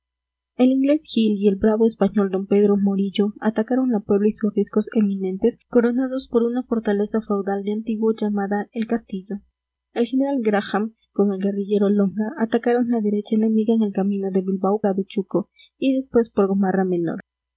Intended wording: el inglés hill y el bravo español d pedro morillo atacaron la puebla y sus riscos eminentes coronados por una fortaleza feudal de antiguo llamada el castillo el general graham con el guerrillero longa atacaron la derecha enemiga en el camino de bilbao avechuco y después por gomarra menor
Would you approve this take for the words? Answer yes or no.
yes